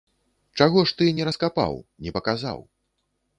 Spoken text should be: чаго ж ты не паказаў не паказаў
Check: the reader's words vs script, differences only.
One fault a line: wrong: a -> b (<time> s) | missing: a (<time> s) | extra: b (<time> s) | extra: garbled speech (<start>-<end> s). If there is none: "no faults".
wrong: паказаў -> раскапаў (1.3 s)